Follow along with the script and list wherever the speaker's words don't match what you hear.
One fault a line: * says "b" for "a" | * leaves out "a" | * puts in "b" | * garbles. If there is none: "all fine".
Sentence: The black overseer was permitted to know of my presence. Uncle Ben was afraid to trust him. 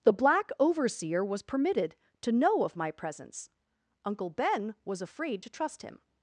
all fine